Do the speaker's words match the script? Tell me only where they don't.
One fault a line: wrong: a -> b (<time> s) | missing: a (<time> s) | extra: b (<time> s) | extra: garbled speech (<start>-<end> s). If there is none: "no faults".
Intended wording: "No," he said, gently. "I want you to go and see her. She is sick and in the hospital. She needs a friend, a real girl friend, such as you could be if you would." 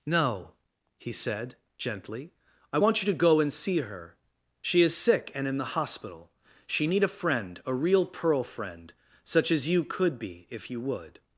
wrong: needs -> need (6.9 s)
wrong: girl -> pearl (8.0 s)